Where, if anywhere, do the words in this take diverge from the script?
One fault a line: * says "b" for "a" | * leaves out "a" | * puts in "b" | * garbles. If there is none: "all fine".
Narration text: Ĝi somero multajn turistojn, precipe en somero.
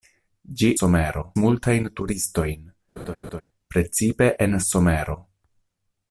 all fine